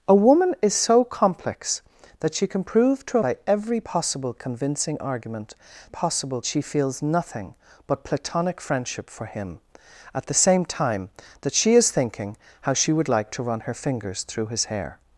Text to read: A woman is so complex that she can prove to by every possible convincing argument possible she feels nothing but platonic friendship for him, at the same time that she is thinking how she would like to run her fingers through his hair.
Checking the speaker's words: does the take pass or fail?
pass